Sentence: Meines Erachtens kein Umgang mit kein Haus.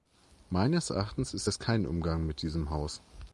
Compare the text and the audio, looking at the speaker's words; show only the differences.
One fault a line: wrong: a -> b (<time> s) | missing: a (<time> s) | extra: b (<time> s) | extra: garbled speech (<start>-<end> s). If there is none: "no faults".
extra: ist das (1.4 s)
wrong: kein -> diesem (2.4 s)